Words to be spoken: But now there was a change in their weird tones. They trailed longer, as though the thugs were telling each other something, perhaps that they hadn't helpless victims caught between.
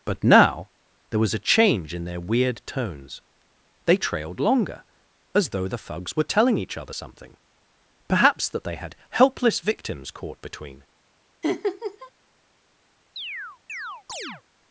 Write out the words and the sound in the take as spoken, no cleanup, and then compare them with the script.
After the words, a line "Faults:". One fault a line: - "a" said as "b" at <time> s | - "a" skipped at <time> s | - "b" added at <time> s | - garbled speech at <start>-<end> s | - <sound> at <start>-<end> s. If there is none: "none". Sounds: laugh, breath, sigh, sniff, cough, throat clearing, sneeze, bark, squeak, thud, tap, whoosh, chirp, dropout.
But now there was a change in their weird tones. They trailed longer, as though the thugs were telling each other something, perhaps that they had helpless victims caught between.
Faults:
- "hadn't" said as "had" at 8.7 s
- laugh at 11.4-12.1 s
- chirp at 13.2-14.4 s